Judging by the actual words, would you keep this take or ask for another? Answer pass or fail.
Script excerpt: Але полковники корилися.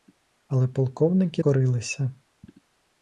pass